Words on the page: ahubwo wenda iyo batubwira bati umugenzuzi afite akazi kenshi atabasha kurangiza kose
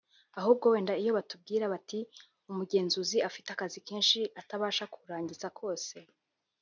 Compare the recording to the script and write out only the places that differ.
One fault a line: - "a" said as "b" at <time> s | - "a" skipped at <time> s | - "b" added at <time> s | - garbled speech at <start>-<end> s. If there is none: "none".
none